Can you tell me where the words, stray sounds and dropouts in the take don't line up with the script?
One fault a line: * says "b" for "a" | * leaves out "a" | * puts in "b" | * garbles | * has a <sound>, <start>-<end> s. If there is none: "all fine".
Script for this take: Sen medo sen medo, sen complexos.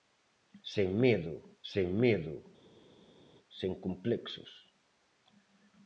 all fine